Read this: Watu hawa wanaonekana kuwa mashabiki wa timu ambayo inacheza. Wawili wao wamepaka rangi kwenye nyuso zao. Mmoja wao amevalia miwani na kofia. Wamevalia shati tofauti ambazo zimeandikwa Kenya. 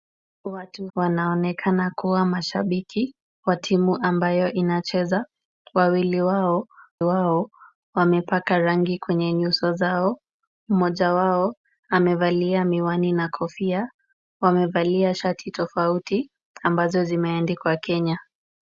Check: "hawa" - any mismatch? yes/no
yes